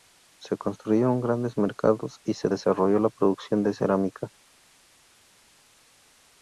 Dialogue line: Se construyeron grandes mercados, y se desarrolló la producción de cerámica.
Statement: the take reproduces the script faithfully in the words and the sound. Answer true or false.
true